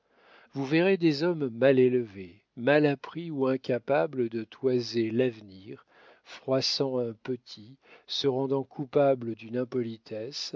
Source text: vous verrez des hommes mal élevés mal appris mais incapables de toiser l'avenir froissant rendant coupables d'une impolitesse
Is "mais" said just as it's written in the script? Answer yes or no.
no